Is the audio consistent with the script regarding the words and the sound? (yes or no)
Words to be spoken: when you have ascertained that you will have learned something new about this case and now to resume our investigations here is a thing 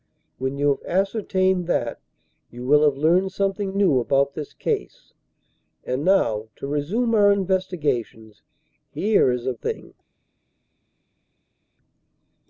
yes